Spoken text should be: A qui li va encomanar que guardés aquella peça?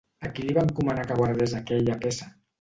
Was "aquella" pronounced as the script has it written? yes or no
yes